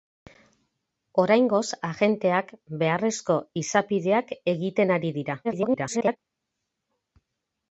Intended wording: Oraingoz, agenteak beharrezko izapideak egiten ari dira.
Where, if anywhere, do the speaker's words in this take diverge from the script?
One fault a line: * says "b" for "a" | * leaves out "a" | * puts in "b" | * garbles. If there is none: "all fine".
* garbles